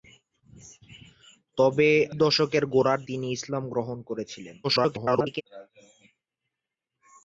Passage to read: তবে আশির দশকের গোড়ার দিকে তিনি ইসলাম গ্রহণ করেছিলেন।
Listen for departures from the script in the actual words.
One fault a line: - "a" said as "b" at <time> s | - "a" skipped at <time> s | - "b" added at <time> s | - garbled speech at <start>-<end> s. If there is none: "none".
- "আশির" skipped at 1.9 s
- "দিকে" skipped at 3.0 s
- garbled speech at 4.6-5.4 s